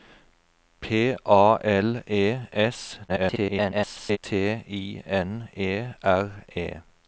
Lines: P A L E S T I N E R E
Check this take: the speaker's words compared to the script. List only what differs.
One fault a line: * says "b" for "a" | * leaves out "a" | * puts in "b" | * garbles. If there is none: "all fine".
* garbles